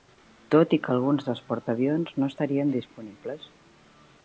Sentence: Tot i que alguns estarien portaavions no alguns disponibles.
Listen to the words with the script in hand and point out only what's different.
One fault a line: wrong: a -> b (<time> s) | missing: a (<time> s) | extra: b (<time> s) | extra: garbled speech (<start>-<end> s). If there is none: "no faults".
wrong: estarien -> dels (1.3 s)
wrong: alguns -> estarien (2.3 s)